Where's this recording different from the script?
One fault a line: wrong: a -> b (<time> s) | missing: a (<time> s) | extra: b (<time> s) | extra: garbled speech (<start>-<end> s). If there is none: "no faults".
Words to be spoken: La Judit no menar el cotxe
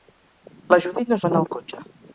no faults